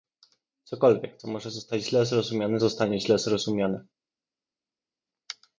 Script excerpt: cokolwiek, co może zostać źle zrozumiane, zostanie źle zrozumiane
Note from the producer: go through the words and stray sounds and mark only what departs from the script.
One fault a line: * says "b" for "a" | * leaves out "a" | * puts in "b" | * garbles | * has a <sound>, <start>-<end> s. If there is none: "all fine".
all fine